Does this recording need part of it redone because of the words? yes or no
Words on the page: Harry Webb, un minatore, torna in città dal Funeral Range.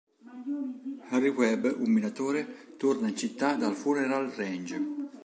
no